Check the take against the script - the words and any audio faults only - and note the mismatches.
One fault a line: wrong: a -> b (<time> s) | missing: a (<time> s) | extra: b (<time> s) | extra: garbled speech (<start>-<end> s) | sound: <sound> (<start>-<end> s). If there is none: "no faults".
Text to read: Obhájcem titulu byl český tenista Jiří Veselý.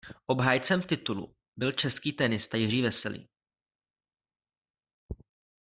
no faults